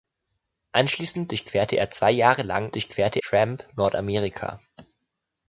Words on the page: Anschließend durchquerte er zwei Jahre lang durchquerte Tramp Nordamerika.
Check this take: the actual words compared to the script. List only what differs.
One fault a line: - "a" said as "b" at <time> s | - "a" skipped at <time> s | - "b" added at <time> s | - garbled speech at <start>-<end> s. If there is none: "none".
none